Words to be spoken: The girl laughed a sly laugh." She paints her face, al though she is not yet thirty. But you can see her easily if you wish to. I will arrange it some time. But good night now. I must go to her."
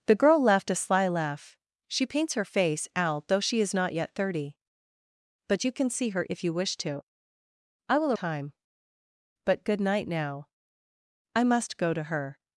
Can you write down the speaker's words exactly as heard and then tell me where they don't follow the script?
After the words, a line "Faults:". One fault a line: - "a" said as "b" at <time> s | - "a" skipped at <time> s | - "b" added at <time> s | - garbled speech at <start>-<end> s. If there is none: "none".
The girl laughed a sly laugh." She paints her face, al though she is not yet thirty. But you can see her if you wish to. I will time. But good night now. I must go to her."
Faults:
- "easily" skipped at 6.2 s
- "arrange it some" skipped at 8.1 s